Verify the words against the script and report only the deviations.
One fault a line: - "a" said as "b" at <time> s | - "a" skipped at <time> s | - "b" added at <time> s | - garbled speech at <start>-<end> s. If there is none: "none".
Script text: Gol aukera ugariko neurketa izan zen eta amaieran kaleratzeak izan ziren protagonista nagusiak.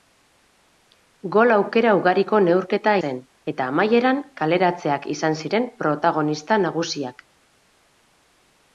- "izan" skipped at 3.0 s